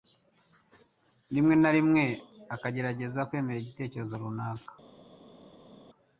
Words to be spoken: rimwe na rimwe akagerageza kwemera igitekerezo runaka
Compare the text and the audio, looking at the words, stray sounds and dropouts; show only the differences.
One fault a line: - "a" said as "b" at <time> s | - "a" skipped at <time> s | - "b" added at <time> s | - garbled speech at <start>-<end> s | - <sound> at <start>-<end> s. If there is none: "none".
none